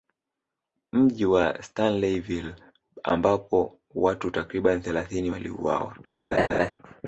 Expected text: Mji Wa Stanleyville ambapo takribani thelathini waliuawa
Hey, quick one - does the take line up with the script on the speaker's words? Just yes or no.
no